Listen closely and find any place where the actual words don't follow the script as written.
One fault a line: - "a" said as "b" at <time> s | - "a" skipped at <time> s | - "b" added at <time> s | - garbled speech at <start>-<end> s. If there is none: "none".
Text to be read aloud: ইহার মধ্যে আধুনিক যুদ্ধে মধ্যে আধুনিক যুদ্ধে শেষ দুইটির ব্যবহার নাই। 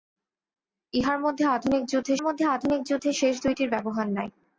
none